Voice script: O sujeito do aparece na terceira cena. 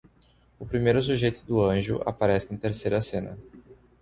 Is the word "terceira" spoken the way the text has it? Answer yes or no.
yes